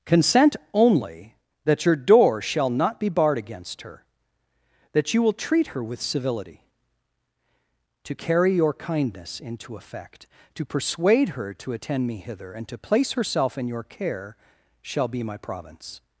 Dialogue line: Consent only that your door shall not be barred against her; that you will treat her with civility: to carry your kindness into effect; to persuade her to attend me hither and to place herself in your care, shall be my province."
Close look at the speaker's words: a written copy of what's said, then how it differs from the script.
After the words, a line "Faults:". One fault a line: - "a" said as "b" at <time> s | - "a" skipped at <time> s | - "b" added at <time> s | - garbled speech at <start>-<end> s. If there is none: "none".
Consent only that your door shall not be barred against her; that you will treat her with civility: to carry your kindness into effect; to persuade her to attend me hither and to place herself in your care, shall be my province."
Faults:
none